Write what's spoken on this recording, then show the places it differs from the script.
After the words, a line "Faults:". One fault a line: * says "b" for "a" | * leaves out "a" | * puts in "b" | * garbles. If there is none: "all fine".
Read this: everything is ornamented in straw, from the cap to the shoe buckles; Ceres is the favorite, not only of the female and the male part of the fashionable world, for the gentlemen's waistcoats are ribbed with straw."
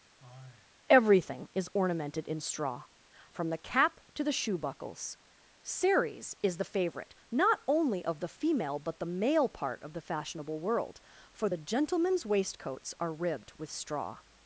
everything is ornamented in straw, from the cap to the shoe buckles; Ceres is the favorite, not only of the female but the male part of the fashionable world, for the gentlemen's waistcoats are ribbed with straw."
Faults:
* says "but" for "and"